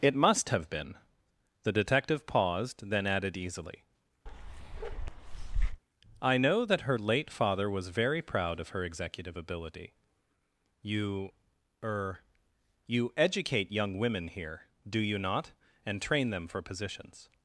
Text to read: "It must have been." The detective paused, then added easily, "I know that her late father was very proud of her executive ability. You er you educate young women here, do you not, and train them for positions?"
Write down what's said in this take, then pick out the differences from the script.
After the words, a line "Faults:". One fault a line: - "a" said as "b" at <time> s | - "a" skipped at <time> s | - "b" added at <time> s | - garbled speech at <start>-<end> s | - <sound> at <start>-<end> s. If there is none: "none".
"It must have been." The detective paused, then added easily, "I know that her late father was very proud of her executive ability. You er you educate young women here, do you not, and train them for positions?"
Faults:
- bark at 4.3-5.8 s